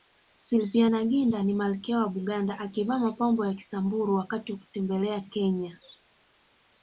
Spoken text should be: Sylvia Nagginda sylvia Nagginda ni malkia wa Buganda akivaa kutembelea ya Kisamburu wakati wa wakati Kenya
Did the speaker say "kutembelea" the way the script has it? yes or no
no